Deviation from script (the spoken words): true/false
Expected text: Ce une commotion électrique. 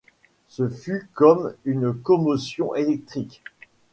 true